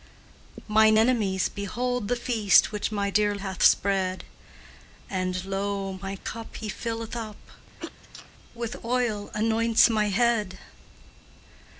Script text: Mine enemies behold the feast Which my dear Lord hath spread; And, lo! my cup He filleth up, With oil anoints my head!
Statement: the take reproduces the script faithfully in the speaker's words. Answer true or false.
false